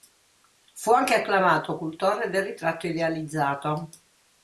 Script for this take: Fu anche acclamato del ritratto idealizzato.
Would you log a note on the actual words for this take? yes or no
yes